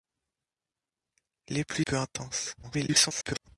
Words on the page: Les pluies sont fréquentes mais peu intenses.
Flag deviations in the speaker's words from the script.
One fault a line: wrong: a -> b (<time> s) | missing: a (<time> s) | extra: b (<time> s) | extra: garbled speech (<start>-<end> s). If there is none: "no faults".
missing: sont fréquentes mais (1.9 s)
extra: garbled speech (2.6-3.5 s)